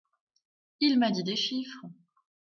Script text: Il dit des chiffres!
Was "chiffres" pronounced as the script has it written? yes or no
yes